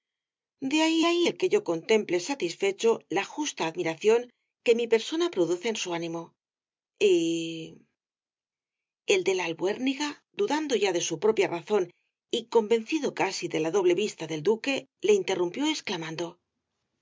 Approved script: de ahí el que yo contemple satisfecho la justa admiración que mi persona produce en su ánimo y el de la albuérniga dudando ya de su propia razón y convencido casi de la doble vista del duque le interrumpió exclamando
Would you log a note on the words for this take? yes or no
yes